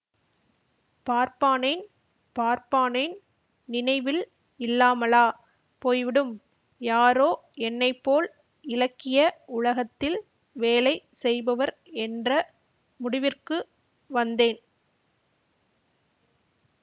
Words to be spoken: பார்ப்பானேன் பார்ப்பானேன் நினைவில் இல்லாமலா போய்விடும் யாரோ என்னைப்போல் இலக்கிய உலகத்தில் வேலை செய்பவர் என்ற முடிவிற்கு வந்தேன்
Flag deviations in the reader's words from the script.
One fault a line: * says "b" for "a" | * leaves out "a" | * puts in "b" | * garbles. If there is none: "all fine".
all fine